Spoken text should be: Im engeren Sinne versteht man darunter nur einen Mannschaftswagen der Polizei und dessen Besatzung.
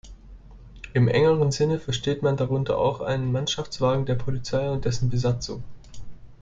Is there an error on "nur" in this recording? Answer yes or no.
yes